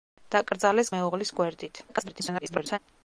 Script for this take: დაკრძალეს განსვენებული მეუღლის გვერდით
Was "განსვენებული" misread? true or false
true